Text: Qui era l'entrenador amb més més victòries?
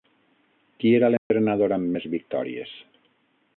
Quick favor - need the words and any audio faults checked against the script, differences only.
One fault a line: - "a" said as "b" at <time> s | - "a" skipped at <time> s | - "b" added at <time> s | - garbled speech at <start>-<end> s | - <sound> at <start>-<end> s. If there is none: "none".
- dropout at 1.2-1.3 s
- "més" skipped at 2.1 s